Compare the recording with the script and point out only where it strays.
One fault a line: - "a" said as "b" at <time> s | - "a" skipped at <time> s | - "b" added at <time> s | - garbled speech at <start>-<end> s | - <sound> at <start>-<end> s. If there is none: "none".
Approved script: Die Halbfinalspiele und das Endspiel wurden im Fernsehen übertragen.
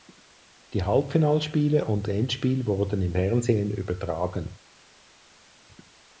- "das" skipped at 2.1 s